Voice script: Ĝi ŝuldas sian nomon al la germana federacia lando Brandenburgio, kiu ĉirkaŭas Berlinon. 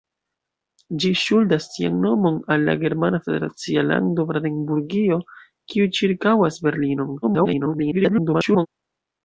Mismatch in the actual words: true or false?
true